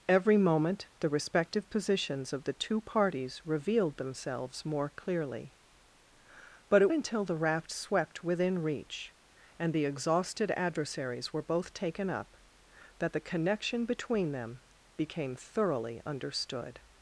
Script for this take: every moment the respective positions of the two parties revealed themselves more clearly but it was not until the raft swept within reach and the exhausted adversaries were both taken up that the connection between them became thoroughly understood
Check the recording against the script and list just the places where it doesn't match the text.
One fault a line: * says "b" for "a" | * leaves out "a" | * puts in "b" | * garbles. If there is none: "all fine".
* leaves out "was not"